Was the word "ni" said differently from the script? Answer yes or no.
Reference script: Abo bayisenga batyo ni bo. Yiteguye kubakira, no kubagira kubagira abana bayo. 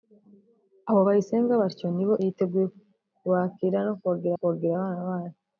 no